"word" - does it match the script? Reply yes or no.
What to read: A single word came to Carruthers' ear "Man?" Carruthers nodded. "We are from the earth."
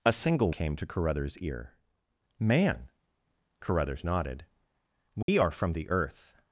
no